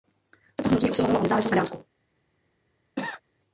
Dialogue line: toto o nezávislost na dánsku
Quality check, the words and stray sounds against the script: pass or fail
fail